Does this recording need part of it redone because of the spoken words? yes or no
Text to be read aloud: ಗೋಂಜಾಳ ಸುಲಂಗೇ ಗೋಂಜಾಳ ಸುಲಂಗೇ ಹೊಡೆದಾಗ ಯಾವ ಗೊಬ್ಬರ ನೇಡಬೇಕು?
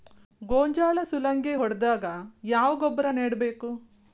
yes